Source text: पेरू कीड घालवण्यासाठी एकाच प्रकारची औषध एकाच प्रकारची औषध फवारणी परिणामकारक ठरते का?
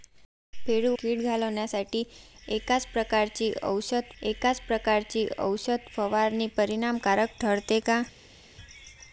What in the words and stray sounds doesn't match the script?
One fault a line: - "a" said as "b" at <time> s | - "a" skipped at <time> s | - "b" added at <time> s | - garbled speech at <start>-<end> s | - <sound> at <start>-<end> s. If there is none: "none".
none